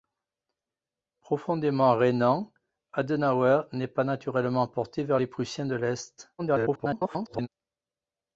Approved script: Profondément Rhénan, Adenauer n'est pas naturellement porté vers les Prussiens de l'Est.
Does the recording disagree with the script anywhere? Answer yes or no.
yes